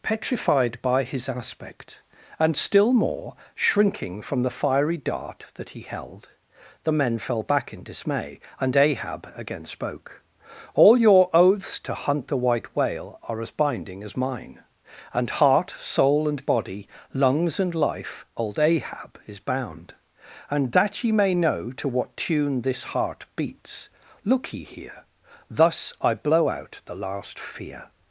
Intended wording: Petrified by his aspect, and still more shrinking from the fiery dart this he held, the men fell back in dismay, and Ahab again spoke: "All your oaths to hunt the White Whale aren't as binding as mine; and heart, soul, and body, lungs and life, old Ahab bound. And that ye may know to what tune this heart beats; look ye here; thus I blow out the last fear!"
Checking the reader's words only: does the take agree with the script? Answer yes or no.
no